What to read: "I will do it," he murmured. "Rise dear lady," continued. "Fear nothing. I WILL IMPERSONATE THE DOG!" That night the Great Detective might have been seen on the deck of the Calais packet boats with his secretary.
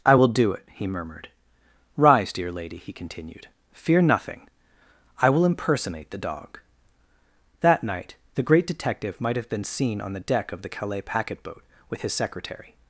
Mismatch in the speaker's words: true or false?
true